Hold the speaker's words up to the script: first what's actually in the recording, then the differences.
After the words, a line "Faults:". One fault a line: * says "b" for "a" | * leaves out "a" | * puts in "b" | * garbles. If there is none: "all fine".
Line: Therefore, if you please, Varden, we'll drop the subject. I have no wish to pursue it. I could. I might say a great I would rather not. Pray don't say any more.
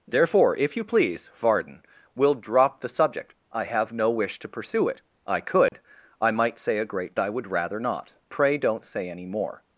Therefore, if you please, Varden, we'll drop the subject. I have no wish to pursue it. I could. I might say a great I would rather not. Pray don't say any more.
Faults:
all fine